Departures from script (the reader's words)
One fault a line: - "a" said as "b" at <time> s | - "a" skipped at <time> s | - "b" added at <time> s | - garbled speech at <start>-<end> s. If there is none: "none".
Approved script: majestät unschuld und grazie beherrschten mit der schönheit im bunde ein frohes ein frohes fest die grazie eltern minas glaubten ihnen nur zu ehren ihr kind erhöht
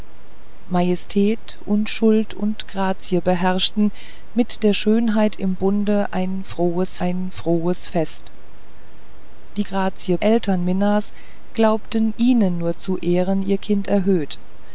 none